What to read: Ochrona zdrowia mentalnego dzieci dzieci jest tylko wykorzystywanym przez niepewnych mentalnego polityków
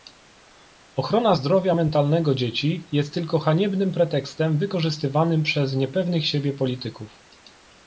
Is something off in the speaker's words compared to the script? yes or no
yes